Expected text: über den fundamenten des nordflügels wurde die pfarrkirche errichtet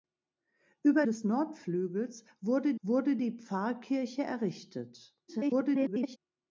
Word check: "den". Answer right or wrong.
wrong